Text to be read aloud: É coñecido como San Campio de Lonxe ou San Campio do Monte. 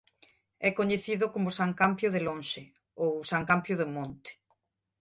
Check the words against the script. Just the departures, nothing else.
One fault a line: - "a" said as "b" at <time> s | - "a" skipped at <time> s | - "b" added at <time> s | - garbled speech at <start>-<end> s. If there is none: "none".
none